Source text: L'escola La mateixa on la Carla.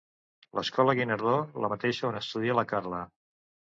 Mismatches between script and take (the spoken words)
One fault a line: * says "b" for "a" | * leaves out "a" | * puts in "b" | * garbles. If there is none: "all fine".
* puts in "Guinardó"
* puts in "estudia"